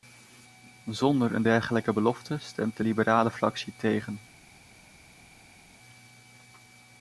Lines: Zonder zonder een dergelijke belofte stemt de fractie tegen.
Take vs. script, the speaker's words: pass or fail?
fail